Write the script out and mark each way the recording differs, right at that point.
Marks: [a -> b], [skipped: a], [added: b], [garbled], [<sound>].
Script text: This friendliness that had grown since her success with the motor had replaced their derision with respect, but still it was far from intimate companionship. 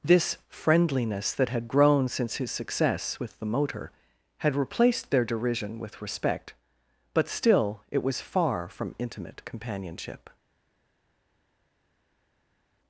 This friendliness that had grown since [her -> his] success with the motor had replaced their derision with respect, but still it was far from intimate companionship.